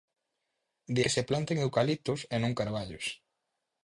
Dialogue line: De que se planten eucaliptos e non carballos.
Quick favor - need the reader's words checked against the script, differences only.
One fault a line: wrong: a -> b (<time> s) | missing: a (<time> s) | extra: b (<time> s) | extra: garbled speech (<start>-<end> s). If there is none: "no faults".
no faults